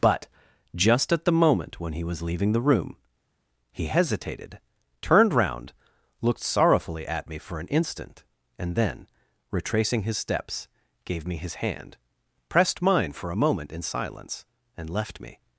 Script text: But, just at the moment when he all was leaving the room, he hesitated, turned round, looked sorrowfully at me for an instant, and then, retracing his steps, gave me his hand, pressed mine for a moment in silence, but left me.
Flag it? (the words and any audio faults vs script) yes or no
yes